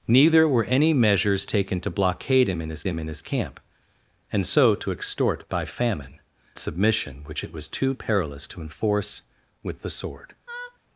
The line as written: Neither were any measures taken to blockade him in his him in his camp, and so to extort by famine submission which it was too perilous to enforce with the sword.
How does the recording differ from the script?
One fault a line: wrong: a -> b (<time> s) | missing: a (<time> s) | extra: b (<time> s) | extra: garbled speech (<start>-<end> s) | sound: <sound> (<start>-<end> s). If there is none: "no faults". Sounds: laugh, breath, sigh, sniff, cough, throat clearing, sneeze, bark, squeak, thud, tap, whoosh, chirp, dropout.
sound: laugh (10.5-10.8 s)